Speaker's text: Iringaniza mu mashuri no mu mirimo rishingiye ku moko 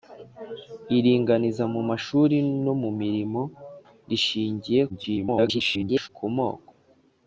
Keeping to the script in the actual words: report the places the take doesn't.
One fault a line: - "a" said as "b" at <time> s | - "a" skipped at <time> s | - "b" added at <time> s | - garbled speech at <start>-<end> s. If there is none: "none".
- garbled speech at 4.9-6.1 s